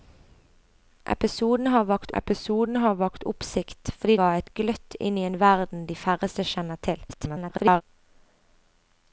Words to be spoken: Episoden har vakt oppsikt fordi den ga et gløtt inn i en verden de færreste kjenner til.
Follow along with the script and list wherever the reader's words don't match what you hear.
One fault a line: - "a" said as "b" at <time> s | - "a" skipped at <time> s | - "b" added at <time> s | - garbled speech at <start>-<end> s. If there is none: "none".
- "episoden har vakt" added at 2.2 s
- "den" skipped at 4.2 s
- garbled speech at 7.1-7.8 s